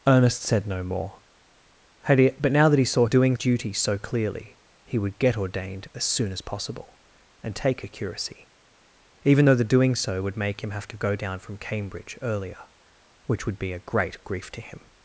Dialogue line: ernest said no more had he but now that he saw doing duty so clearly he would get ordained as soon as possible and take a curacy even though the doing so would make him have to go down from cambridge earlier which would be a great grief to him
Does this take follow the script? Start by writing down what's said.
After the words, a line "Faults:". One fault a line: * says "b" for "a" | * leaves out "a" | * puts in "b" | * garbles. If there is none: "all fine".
ernest said no more had he but now that he saw doing duty so clearly he would get ordained as soon as possible and take a curacy even though the doing so would make him have to go down from cambridge earlier which would be a great grief to him
Faults:
all fine